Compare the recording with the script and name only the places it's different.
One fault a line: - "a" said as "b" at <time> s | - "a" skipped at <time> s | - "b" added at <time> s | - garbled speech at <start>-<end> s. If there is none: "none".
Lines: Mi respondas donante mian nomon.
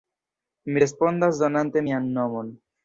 none